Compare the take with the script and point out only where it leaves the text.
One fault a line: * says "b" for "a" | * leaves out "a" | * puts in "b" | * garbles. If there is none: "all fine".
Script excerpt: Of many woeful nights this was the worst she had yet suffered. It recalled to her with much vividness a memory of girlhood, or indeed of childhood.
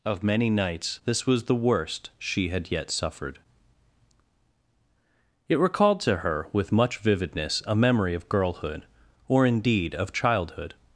* leaves out "woeful"